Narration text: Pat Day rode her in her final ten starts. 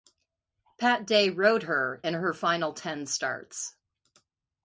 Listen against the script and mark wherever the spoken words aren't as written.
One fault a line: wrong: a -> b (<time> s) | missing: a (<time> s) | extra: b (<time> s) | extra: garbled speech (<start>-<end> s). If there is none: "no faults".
no faults